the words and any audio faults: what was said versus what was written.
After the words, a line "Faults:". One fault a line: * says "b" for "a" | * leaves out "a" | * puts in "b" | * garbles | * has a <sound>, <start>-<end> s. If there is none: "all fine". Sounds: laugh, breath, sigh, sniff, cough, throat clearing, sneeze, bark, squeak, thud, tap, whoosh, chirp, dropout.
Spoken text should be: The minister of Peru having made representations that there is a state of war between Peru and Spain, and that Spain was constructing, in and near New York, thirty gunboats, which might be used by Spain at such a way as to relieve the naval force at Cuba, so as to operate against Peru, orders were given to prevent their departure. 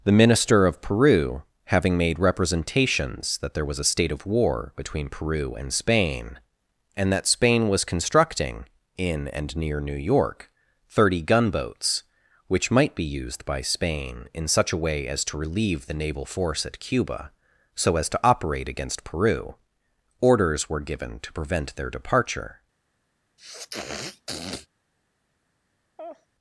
The minister of Peru having made representations that there was a state of war between Peru and Spain, and that Spain was constructing, in and near New York, thirty gunboats, which might be used by Spain in such a way as to relieve the naval force at Cuba, so as to operate against Peru, orders were given to prevent their departure.
Faults:
* says "was" for "is"
* says "in" for "at"
* has a sniff, 23.4-24.7 s
* has a laugh, 26.0-26.3 s